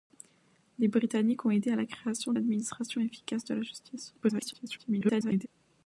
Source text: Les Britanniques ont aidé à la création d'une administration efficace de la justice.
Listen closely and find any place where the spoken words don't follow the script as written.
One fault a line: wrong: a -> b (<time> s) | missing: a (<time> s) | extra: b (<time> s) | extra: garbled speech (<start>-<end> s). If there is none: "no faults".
missing: d'une (2.3 s)
extra: garbled speech (4.2-5.5 s)